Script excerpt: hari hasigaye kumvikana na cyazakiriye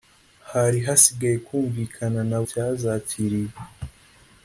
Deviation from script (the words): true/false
false